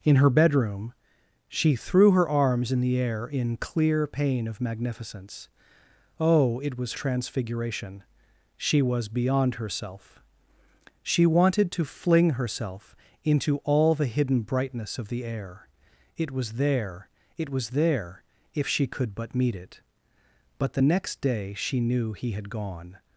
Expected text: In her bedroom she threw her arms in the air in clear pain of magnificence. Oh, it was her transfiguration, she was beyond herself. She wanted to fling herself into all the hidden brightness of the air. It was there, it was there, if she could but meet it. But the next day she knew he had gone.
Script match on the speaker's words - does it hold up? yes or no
no